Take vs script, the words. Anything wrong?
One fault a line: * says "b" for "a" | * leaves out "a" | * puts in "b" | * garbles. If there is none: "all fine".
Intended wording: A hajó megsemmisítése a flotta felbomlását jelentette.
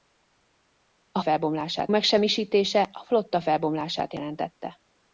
* says "felbomlását" for "hajó"